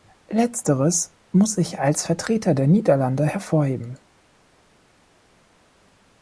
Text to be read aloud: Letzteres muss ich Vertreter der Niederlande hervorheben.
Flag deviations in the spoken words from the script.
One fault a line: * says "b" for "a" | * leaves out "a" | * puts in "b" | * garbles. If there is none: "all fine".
* puts in "als"